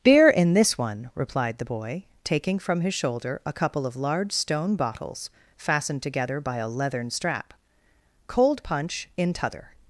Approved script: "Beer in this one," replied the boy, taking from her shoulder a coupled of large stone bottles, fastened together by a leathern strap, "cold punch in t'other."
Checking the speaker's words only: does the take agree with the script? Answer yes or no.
no